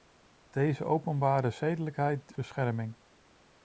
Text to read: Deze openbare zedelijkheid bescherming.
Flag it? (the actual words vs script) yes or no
no